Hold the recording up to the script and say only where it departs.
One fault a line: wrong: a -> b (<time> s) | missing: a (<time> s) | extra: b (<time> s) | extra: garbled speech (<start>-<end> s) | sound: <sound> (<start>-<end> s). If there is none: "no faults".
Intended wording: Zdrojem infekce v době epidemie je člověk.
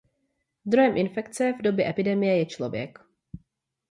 no faults